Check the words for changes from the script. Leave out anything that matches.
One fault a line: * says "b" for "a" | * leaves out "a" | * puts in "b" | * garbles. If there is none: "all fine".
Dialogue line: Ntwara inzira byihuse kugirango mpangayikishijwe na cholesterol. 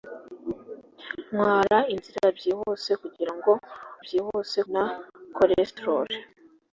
* says "byihuse" for "mpangayikishijwe"